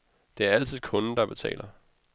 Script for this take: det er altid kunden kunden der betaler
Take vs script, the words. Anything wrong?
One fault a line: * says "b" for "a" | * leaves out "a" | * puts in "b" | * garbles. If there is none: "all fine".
* leaves out "kunden"